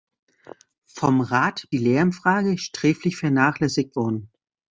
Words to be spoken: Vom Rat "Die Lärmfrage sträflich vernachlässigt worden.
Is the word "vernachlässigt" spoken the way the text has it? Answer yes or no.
yes